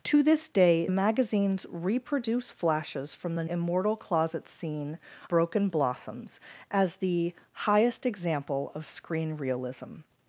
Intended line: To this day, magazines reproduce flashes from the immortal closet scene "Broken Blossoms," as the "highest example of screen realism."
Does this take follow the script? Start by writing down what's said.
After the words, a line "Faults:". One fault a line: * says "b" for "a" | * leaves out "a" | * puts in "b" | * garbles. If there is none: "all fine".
To this day, magazines reproduce flashes from the immortal closet scene "Broken Blossoms," as the "highest example of screen realism."
Faults:
all fine